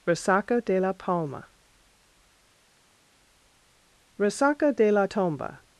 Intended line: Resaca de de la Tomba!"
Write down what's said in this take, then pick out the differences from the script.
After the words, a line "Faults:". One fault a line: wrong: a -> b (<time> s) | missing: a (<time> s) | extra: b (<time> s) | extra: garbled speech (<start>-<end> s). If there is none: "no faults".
Resaca de la Palma?" "Resaca de la Tomba!"
Faults:
extra: la Palma Resaca (0.8 s)